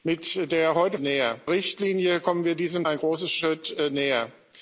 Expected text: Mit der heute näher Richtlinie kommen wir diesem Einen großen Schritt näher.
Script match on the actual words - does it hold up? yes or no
yes